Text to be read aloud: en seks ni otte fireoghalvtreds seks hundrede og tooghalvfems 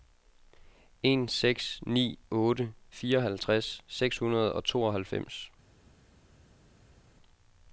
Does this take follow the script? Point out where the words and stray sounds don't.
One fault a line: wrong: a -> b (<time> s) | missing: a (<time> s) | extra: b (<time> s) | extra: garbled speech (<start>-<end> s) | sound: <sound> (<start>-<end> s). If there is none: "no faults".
no faults